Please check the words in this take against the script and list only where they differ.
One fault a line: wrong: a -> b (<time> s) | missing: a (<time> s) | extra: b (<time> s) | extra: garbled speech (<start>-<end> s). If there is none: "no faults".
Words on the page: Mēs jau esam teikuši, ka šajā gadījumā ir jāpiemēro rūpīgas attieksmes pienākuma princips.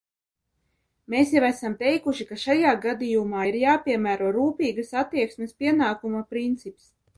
no faults